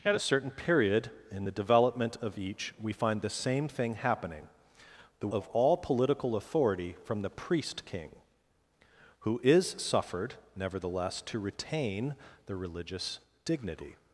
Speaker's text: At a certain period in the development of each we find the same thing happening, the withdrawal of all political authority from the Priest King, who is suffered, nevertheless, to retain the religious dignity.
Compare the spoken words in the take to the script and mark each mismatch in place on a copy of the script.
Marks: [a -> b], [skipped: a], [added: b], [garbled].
At a certain period in the development of each we find the same thing happening, the [skipped: withdrawal] of all political authority from the Priest King, who is suffered, nevertheless, to retain the religious dignity.